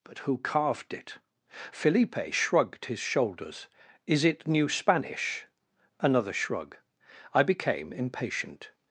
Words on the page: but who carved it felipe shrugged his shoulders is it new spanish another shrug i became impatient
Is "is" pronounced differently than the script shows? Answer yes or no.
no